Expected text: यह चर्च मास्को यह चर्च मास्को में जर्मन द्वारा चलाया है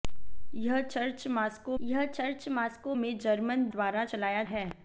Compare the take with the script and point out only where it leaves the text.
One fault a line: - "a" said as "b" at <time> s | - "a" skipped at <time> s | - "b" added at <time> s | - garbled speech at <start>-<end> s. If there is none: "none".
none